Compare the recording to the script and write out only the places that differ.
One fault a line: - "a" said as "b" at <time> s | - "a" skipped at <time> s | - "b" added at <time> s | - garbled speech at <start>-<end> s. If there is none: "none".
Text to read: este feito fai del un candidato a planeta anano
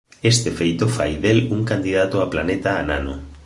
none